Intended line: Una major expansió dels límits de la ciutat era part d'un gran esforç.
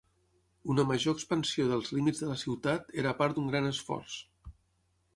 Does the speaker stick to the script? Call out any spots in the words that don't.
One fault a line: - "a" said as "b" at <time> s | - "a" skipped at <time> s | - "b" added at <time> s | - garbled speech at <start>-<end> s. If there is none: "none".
none